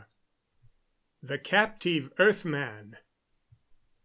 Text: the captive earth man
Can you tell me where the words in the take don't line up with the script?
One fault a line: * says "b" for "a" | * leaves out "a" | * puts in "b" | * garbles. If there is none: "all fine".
all fine